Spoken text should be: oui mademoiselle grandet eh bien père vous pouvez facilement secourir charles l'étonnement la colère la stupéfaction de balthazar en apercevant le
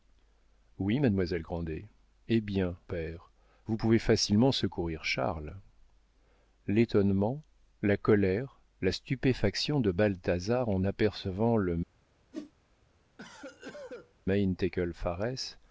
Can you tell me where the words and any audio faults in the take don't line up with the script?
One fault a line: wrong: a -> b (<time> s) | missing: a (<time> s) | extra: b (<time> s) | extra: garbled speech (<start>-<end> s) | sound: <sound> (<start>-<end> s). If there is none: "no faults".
sound: whoosh (12.3-12.5 s)
sound: cough (13.2-14.1 s)